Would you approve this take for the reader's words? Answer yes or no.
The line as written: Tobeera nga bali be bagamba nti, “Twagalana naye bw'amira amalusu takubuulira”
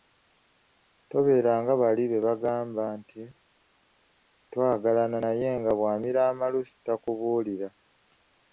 no